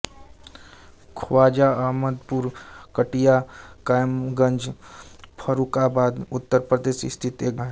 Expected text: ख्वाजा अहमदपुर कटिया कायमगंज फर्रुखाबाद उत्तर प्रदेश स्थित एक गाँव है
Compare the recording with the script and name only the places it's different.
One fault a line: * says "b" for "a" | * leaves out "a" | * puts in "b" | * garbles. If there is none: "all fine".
* leaves out "गाँव"